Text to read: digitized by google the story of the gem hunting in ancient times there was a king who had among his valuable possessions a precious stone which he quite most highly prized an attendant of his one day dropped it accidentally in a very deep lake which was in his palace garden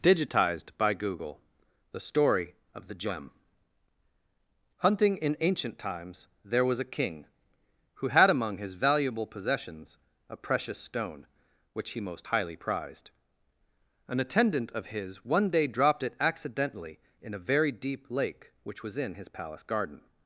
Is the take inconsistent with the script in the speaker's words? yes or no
yes